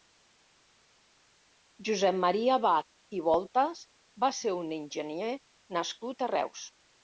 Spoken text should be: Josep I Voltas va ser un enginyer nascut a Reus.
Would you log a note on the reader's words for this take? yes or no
yes